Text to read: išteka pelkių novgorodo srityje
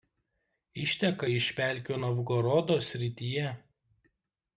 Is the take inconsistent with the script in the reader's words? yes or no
yes